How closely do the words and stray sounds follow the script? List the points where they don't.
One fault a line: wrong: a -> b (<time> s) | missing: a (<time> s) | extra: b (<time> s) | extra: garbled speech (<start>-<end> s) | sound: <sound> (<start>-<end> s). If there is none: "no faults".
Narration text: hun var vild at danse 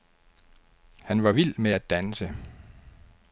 wrong: hun -> han (1.0 s)
extra: med (1.6 s)